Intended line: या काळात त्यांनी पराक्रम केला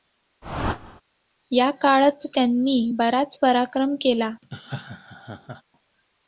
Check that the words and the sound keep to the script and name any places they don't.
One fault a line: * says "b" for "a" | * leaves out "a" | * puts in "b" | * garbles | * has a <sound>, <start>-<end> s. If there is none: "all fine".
* has a whoosh, 0.4-1.0 s
* puts in "बराच"
* has a laugh, 4.4-5.6 s